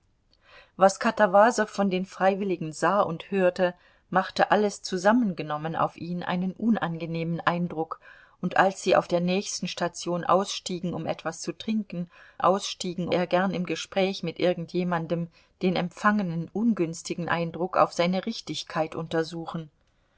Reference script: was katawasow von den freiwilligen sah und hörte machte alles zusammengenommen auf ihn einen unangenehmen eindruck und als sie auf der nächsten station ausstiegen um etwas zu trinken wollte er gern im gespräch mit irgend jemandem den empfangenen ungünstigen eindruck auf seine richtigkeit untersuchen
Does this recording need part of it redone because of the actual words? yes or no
yes